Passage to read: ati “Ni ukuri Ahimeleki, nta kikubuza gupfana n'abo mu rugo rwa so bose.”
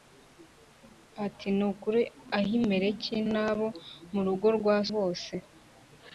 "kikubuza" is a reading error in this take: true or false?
true